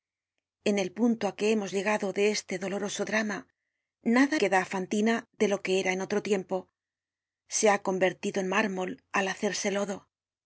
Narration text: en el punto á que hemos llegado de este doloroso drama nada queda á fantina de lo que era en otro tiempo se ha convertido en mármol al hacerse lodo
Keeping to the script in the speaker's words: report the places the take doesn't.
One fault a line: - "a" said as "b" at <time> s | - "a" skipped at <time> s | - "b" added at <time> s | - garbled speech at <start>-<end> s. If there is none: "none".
none